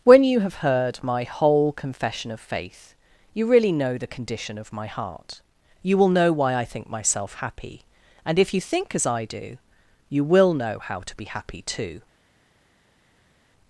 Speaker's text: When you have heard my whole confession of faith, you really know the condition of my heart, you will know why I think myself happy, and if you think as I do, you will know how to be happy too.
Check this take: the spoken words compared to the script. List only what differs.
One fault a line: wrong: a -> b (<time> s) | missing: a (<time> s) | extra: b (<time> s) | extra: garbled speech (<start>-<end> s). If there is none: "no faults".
no faults